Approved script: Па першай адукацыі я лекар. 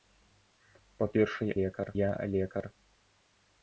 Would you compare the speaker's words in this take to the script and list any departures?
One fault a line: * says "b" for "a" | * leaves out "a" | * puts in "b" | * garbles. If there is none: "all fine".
* says "лекар" for "адукацыі"